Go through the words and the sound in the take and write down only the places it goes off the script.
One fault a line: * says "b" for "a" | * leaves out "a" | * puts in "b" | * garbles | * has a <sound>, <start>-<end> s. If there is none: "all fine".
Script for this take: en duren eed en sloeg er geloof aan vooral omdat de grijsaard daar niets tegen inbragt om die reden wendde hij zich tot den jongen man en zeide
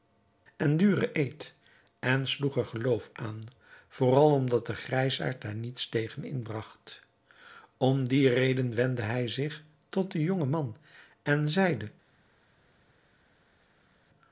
all fine